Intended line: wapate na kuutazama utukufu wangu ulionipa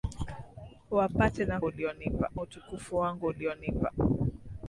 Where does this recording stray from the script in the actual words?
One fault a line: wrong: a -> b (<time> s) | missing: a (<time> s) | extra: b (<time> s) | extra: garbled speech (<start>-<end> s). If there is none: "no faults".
wrong: kuutazama -> ulionipa (1.6 s)